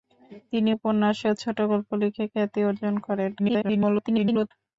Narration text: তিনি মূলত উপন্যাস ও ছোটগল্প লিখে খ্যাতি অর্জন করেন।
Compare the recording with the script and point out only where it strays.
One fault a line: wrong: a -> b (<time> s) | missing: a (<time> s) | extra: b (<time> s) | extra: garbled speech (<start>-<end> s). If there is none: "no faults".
missing: মূলত (0.7 s)
extra: garbled speech (3.4-4.5 s)